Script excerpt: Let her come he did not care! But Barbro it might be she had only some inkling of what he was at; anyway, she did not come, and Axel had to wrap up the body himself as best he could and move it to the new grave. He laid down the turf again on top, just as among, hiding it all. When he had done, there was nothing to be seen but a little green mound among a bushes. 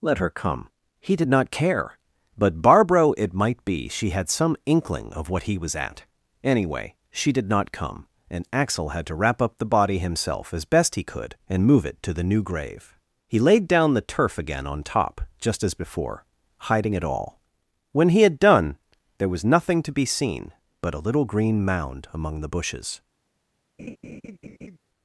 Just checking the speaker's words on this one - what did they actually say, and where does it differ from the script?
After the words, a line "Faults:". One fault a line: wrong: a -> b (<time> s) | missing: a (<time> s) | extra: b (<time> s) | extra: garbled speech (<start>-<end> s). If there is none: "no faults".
Let her come he did not care! But Barbro it might be she had some inkling of what he was at; anyway, she did not come, and Axel had to wrap up the body himself as best he could and move it to the new grave. He laid down the turf again on top, just as before, hiding it all. When he had done, there was nothing to be seen but a little green mound among the bushes.
Faults:
missing: only (4.3 s)
wrong: among -> before (15.8 s)
wrong: a -> the (22.4 s)